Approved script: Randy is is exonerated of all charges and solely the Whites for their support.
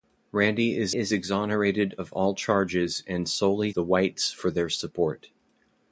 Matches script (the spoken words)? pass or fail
pass